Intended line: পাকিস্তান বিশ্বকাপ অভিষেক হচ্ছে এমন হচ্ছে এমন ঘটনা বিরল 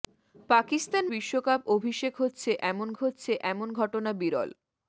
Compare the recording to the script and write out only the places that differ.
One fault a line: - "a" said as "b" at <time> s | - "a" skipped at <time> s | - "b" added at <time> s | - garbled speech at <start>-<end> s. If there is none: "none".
none